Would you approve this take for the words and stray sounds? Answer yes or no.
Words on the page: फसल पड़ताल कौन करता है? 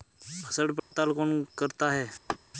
no